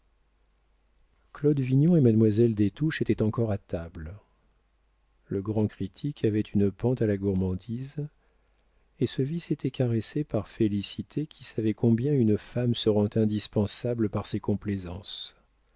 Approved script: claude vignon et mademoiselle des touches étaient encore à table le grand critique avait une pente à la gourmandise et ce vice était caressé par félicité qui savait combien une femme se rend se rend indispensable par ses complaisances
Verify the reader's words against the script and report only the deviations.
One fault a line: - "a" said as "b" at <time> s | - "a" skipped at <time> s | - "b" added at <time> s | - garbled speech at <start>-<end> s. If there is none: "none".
- "se rend" skipped at 13.1 s